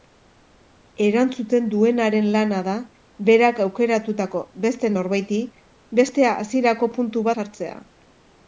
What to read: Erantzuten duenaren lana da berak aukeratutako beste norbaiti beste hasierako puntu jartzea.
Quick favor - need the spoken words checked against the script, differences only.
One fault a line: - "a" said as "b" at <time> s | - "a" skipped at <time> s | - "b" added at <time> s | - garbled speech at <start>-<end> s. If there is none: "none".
none